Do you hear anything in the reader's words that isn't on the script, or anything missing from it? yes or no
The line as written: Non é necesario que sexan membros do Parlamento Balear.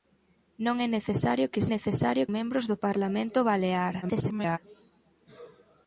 yes